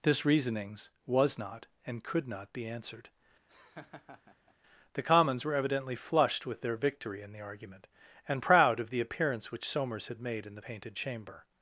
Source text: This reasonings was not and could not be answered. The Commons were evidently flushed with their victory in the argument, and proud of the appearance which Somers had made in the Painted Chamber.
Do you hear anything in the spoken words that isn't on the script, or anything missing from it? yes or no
no